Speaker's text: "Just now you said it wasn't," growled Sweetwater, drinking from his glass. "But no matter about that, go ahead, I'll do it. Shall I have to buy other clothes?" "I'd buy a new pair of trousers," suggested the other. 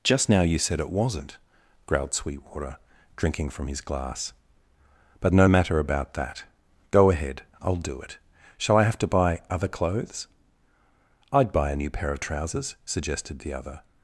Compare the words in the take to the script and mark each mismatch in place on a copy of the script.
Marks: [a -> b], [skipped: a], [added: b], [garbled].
"Just now you said it wasn't," growled Sweetwater, drinking from his glass. "But no matter about that, go ahead, I'll do it. Shall I have to buy other clothes?" "I'd buy a new pair of trousers," suggested the other.